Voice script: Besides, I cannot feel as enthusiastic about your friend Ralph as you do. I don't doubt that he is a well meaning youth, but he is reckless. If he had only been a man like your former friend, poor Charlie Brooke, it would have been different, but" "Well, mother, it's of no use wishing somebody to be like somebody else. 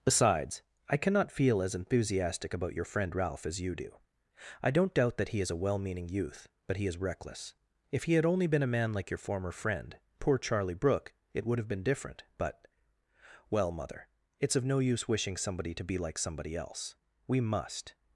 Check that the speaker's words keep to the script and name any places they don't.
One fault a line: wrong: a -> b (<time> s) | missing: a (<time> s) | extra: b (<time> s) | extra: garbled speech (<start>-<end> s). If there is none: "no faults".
extra: We must (17.3 s)